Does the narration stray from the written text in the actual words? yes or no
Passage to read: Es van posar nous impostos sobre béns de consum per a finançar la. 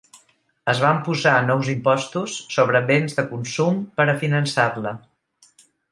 no